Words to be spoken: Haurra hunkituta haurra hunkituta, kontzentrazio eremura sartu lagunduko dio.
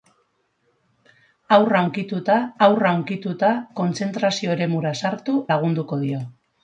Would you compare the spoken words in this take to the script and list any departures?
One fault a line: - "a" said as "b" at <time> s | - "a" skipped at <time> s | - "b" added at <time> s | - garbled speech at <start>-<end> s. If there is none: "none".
none